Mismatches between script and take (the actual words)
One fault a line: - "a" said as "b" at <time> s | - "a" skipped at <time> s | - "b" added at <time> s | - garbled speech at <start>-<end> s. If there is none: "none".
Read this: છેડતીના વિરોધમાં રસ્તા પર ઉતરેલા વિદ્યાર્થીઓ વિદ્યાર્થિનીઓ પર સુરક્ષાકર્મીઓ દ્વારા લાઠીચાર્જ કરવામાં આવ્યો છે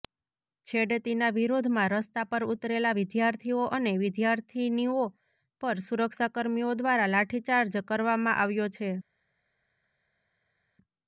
- "અને" added at 3.8 s